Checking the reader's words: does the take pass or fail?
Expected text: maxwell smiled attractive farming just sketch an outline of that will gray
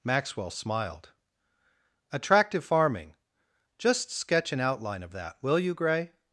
fail